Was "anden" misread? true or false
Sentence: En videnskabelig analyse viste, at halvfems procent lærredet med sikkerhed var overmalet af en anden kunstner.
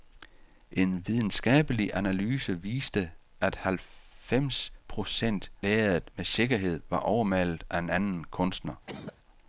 false